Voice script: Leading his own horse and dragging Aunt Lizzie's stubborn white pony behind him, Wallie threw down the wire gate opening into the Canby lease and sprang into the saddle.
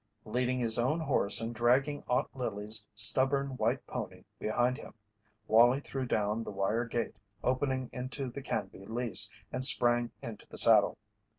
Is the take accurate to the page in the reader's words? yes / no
yes